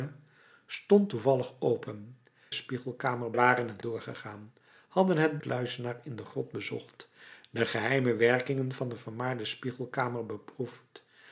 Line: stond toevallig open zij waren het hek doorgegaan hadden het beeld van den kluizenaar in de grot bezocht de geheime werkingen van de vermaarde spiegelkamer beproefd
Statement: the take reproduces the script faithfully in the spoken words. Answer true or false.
false